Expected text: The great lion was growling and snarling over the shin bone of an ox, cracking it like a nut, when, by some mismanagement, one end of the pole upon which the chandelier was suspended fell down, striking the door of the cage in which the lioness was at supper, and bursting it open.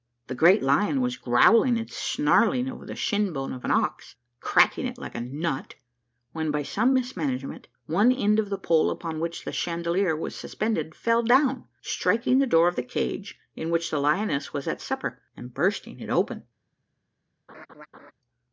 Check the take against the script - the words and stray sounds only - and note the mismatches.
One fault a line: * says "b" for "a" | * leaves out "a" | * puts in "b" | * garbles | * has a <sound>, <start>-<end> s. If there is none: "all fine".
* has a laugh, 17.5-18.1 s